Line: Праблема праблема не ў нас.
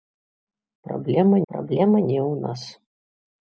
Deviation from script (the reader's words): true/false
false